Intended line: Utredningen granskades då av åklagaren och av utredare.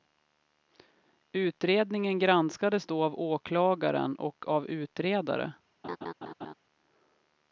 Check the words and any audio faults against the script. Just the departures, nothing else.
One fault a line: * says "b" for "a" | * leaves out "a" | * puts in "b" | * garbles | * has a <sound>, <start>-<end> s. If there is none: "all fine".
* has a laugh, 5.8-6.5 s